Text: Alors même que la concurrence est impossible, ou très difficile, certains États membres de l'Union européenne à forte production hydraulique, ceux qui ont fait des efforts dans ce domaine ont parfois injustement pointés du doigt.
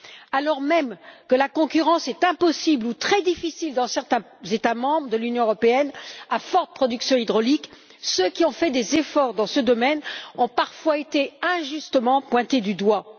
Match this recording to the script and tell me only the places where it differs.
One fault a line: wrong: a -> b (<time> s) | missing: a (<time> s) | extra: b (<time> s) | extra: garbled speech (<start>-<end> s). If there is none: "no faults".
extra: dans (3.7 s)
extra: été (11.0 s)